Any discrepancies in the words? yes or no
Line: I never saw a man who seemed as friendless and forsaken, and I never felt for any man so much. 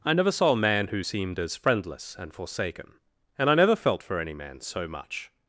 no